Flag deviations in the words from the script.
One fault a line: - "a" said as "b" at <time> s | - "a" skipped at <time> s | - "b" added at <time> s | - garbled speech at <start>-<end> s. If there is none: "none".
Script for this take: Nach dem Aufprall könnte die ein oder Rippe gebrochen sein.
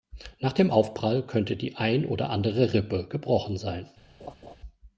- "andere" added at 2.3 s